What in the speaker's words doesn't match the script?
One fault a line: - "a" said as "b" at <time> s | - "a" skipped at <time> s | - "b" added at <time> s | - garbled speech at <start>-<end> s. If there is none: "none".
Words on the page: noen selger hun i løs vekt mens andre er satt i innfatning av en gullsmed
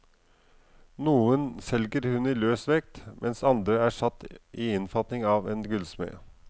none